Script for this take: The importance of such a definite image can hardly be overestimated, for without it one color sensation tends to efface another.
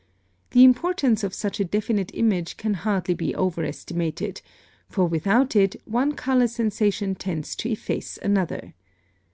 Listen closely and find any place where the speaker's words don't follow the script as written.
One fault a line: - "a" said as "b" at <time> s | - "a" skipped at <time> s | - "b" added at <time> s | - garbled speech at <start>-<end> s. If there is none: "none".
none